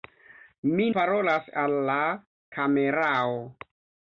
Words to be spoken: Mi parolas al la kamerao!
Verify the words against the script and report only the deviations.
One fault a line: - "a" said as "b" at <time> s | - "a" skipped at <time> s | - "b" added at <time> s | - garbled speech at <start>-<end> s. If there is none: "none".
none